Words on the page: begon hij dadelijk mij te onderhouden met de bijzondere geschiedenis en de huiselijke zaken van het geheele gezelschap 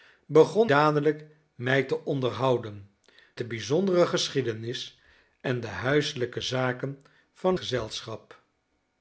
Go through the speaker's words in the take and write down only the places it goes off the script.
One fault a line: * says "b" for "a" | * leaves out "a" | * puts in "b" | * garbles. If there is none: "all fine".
* leaves out "hij"
* leaves out "met"
* leaves out "het geheele"